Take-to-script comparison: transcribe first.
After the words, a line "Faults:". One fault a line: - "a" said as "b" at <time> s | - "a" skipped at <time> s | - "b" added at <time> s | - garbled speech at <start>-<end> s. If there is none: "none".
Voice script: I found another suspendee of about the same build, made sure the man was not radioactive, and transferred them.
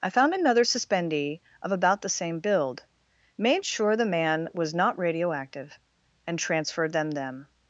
I found another suspendee of about the same build, made sure the man was not radioactive, and transferred them them.
Faults:
- "them" added at 7.1 s